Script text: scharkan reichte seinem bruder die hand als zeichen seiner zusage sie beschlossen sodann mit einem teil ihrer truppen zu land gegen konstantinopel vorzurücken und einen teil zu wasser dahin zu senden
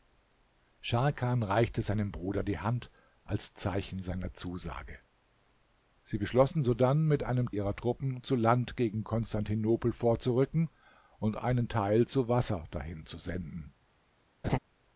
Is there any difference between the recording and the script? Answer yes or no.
yes